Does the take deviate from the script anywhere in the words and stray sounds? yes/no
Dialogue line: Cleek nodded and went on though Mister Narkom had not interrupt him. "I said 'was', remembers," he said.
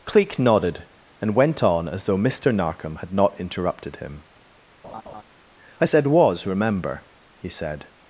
yes